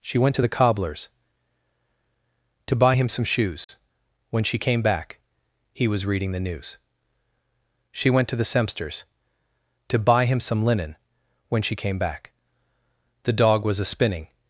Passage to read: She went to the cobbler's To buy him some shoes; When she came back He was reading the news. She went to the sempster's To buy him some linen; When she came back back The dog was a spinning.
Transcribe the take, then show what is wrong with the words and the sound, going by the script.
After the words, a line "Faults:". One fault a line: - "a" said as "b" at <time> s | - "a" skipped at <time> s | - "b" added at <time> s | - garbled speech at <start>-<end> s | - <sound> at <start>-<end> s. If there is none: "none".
She went to the cobbler's To buy him some shoes; When she came back He was reading the news. She went to the sempster's To buy him some linen; When she came back The dog was a spinning.
Faults:
- dropout at 3.6-3.7 s
- "back" skipped at 12.3 s